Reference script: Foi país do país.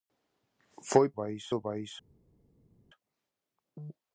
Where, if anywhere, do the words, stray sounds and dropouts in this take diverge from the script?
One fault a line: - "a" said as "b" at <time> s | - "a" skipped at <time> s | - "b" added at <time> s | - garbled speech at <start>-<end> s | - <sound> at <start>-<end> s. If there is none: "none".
none